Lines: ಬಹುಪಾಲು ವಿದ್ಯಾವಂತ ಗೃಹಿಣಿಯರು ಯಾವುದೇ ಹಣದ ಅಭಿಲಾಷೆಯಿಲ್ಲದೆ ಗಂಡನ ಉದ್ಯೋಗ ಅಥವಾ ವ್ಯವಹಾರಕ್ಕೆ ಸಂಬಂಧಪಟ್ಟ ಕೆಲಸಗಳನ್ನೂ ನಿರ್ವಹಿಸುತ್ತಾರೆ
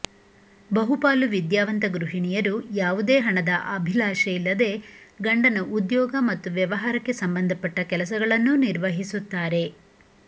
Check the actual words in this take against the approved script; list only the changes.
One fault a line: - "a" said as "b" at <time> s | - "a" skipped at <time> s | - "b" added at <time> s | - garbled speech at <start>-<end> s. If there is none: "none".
- "ಅಥವಾ" said as "ಮತ್ತು" at 6.3 s